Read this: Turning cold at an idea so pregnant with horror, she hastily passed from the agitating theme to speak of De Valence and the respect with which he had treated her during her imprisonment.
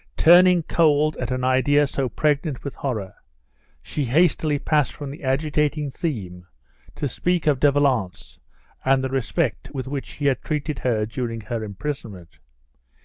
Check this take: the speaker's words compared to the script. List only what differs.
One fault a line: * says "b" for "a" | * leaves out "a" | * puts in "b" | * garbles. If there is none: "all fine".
all fine